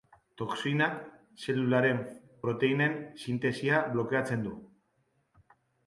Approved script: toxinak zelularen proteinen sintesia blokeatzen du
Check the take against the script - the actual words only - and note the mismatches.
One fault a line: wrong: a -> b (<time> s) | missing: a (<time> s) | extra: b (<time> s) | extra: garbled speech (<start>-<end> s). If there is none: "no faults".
no faults